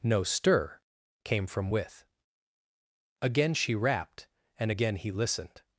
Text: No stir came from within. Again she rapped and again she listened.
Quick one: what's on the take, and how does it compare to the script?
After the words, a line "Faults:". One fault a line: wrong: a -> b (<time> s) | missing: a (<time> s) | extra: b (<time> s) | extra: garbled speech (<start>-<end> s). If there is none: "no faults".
No stir came from with. Again she rapped and again he listened.
Faults:
wrong: within -> with (1.7 s)
wrong: she -> he (5.0 s)